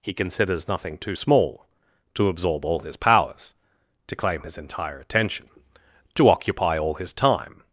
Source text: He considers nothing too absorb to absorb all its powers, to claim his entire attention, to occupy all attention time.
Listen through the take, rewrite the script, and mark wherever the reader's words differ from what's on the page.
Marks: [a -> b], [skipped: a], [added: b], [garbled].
He considers nothing too [absorb -> small] to absorb all [its -> his] powers, to claim his entire attention, to occupy all [attention -> his] time.